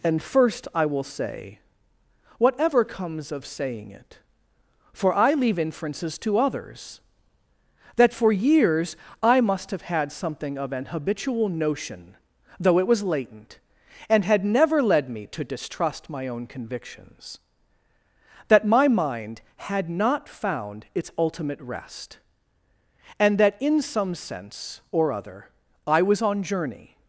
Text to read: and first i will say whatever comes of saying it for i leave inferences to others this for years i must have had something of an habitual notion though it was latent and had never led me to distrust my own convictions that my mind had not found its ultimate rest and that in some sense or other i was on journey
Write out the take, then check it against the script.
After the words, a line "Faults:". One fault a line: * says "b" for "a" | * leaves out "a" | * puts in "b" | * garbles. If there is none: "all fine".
and first i will say whatever comes of saying it for i leave inferences to others that for years i must have had something of an habitual notion though it was latent and had never led me to distrust my own convictions that my mind had not found its ultimate rest and that in some sense or other i was on journey
Faults:
* says "that" for "this"